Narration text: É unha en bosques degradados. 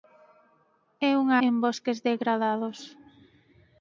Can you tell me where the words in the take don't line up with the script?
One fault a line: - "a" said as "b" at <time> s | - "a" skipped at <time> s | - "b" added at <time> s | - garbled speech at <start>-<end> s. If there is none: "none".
none